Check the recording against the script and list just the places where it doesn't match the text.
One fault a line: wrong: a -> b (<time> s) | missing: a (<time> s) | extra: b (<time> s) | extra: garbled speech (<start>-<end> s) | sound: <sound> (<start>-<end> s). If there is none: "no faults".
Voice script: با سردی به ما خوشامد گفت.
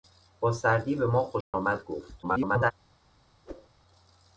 sound: dropout (1.4-1.5 s)
extra: garbled speech (2.2-2.7 s)
sound: whoosh (3.4-3.7 s)